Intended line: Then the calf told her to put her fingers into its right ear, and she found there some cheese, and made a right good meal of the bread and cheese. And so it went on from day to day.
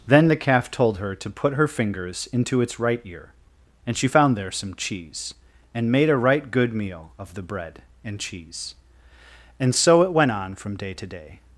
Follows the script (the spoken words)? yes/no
yes